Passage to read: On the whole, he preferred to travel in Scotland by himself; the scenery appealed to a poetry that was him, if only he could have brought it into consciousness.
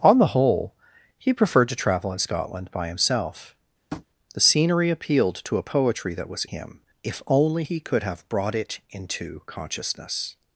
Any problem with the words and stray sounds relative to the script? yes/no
yes